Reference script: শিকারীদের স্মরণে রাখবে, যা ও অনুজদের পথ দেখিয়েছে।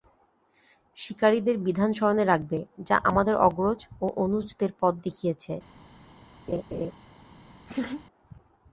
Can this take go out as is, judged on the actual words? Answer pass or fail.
fail